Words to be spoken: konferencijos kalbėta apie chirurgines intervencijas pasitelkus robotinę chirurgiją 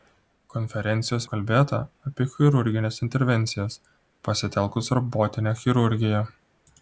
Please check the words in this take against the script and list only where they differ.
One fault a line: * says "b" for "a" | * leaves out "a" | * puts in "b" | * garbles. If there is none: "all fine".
all fine